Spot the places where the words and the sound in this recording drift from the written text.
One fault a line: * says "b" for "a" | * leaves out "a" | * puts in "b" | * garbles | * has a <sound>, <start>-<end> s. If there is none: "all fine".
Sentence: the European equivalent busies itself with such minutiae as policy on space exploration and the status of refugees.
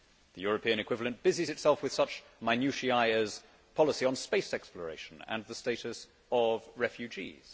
all fine